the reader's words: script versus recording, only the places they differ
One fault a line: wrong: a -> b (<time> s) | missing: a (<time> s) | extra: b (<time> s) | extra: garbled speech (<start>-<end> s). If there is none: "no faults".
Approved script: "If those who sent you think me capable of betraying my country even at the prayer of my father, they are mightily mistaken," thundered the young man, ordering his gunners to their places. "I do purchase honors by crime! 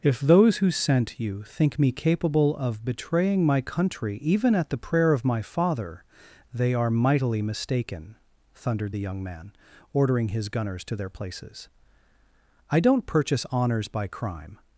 wrong: do -> don't (12.8 s)